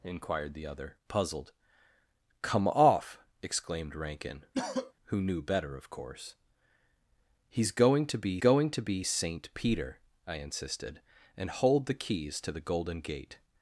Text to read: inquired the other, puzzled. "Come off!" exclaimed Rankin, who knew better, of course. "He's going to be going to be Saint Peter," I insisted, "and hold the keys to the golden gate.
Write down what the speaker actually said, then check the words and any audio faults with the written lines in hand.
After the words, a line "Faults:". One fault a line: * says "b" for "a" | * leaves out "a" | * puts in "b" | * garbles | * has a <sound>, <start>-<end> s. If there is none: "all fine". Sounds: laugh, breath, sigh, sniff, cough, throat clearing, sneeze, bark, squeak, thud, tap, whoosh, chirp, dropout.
inquired the other, puzzled. "Come off!" exclaimed Rankin, who knew better, of course. "He's going to be going to be Saint Peter," I insisted, "and hold the keys to the golden gate.
Faults:
* has a cough, 4.5-4.9 s